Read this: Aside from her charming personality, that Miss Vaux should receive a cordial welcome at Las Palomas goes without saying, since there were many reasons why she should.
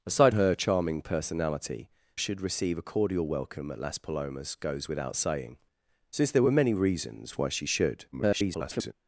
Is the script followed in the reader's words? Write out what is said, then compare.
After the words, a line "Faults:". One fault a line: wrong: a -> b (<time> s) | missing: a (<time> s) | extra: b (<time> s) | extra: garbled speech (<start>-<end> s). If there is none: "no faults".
Aside her charming personality, should receive a cordial welcome at Las Palomas goes without saying, since there were many reasons why she should. [garbled]
Faults:
missing: from (0.3 s)
missing: that Miss Vaux (1.9 s)
extra: garbled speech (8.1-8.9 s)